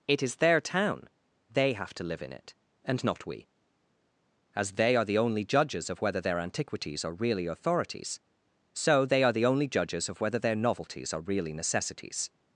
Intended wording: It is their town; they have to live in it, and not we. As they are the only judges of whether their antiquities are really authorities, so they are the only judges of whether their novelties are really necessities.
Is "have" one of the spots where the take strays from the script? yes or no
no